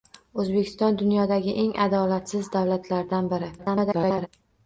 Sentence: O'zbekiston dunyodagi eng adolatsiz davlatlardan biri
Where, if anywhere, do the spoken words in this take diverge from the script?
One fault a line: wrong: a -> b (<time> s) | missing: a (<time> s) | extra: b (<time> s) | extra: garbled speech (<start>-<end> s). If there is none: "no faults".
extra: garbled speech (3.6-4.3 s)